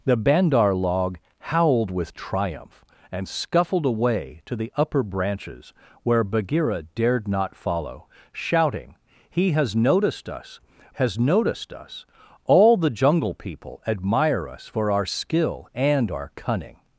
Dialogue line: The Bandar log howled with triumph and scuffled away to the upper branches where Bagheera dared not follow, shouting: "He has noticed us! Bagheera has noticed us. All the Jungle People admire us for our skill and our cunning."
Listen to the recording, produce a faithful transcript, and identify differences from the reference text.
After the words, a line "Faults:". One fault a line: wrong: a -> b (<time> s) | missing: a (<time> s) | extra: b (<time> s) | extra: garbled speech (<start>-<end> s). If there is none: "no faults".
The Bandar log howled with triumph and scuffled away to the upper branches where Bagheera dared not follow, shouting: "He has noticed us! Has noticed us. All the Jungle People admire us for our skill and our cunning."
Faults:
missing: Bagheera (10.6 s)